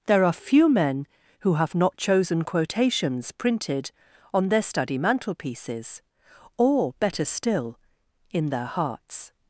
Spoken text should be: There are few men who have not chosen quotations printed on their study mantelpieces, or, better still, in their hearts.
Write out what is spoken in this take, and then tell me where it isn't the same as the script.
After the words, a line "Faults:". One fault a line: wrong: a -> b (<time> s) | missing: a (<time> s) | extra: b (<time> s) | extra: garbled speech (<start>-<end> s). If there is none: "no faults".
There are few men who have not chosen quotations printed on their study mantelpieces, or, better still, in their hearts.
Faults:
no faults